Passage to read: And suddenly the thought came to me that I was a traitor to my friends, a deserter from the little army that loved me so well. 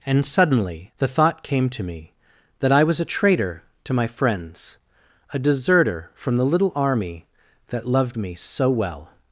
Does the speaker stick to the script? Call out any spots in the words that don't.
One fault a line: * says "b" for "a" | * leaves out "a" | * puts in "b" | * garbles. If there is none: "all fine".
all fine